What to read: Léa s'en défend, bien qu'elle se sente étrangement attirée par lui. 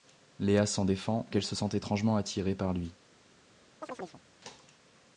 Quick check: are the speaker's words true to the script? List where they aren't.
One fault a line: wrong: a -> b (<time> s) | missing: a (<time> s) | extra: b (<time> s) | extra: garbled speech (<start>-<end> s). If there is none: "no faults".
missing: bien (1.3 s)